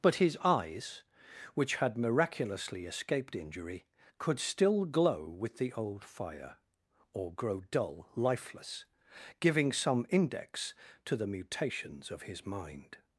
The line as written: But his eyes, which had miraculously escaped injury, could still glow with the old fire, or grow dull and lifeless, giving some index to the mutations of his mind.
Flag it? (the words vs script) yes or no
yes